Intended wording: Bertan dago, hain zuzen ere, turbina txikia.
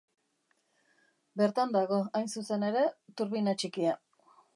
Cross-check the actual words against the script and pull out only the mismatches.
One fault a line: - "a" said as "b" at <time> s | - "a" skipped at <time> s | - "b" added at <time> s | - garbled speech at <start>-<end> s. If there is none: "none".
none